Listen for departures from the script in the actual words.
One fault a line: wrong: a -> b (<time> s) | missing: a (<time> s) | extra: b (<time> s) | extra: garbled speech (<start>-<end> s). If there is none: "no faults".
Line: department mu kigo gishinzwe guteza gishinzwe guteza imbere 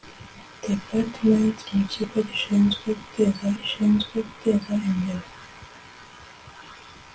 no faults